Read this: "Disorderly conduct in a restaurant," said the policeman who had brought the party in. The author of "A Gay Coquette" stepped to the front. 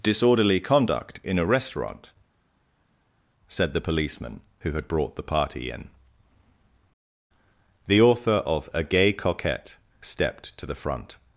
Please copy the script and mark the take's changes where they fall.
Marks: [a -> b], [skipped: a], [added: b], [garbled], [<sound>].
"Disorderly conduct in a restaurant," said the policeman who had brought the party in. The author of "A Gay Coquette" stepped to the front.